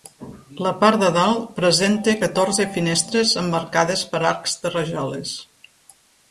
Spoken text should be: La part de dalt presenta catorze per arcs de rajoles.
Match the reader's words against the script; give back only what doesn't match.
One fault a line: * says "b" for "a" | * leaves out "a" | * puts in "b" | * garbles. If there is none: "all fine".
* puts in "finestres emmarcades"